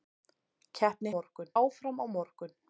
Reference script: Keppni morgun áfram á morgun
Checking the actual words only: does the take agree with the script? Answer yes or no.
yes